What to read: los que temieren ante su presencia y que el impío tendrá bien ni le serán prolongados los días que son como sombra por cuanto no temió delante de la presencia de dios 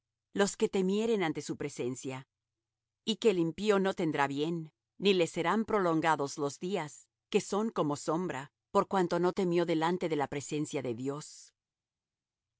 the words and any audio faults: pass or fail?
fail